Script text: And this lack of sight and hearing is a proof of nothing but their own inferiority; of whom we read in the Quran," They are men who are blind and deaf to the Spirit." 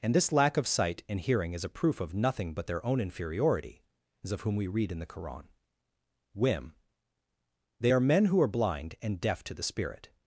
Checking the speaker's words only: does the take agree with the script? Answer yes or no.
no